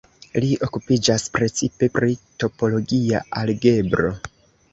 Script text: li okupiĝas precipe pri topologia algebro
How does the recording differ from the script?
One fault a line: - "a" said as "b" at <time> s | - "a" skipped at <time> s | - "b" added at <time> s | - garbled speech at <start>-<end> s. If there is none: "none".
none